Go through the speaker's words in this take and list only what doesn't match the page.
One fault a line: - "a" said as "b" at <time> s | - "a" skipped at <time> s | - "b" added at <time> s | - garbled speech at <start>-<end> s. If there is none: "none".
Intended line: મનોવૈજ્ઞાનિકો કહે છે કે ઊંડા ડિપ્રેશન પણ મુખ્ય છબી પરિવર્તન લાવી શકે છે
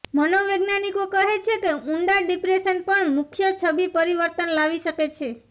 none